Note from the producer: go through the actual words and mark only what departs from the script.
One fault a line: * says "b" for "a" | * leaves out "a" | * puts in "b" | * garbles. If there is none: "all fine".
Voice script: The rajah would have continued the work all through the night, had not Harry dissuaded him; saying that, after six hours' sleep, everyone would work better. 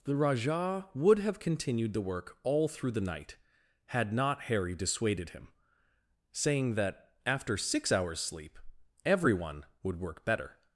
all fine